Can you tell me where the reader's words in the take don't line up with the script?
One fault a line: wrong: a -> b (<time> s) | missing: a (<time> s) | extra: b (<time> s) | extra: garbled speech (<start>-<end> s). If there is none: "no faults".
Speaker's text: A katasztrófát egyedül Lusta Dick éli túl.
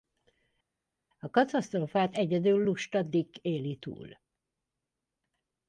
no faults